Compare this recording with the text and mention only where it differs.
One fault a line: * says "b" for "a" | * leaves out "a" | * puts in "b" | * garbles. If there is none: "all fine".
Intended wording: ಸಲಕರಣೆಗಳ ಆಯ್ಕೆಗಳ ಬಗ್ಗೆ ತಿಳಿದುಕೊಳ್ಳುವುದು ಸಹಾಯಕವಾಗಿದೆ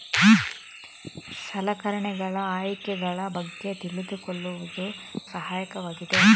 all fine